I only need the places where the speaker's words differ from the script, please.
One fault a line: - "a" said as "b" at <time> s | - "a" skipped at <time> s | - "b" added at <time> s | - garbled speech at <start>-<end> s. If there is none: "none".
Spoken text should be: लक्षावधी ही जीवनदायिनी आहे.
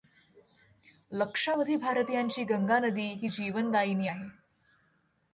- "भारतीयांची गंगा नदी" added at 1.8 s